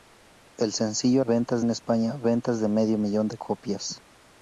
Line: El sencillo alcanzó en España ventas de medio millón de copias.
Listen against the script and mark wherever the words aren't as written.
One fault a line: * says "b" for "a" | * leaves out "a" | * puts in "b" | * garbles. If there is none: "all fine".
* says "ventas" for "alcanzó"